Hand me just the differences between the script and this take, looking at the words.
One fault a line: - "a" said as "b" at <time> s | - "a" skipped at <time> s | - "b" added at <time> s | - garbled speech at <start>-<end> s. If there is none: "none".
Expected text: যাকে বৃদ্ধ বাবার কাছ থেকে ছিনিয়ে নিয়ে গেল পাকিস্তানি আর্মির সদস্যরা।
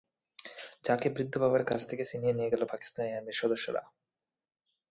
none